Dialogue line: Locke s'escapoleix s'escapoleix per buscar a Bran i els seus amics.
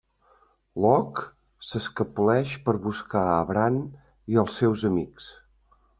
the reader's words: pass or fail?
fail